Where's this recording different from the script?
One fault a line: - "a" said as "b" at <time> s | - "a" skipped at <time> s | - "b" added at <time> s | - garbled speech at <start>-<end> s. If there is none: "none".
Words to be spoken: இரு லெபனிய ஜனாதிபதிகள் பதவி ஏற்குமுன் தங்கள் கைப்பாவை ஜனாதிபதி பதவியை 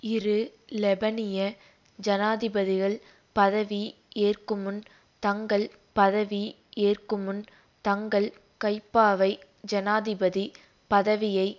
- "பதவி ஏற்குமுன் தங்கள்" added at 5.9 s